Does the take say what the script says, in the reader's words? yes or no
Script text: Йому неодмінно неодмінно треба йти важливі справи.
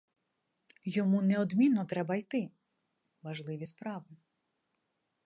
no